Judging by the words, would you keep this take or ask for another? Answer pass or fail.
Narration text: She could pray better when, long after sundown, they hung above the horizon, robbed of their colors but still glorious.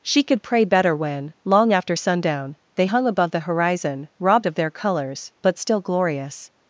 pass